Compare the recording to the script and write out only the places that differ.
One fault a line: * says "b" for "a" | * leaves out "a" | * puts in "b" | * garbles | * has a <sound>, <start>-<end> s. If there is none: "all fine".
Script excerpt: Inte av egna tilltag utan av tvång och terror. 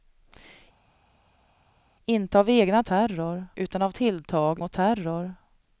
* says "terror" for "tilltag"
* says "tilltag" for "tvång"